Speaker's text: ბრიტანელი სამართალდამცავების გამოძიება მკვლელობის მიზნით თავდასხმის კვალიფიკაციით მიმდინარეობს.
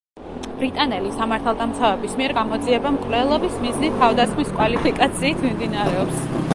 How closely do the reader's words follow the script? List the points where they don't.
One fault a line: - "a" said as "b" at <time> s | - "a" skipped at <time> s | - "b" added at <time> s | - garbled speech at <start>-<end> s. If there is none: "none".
- "მიერ" added at 2.2 s